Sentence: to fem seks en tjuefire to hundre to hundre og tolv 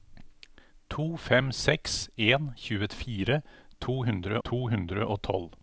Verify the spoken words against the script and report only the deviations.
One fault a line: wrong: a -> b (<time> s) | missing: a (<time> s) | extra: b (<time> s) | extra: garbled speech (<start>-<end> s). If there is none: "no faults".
no faults